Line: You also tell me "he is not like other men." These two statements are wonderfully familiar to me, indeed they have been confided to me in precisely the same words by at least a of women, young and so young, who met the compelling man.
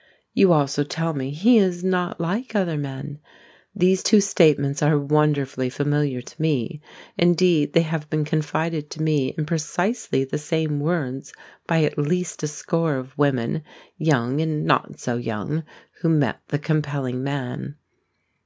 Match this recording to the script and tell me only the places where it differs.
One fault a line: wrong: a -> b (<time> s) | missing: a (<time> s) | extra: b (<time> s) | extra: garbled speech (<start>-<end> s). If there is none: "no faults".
extra: score (12.5 s)
extra: not (14.6 s)